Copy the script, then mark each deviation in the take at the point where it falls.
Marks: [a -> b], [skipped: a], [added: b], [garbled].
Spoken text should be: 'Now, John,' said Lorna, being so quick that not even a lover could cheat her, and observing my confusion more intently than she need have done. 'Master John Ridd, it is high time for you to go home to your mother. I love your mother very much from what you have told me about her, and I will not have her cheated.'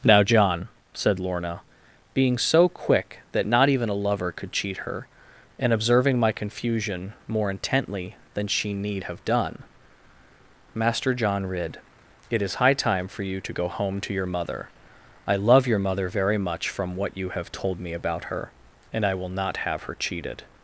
'Now, John,' said Lorna, being so quick that not even a lover could cheat her, and observing my confusion more intently than she need have done. 'Master John Ridd, it is high time for you to go home to your mother. I love your mother very much from what you have told me about her, and I will not have her cheated.'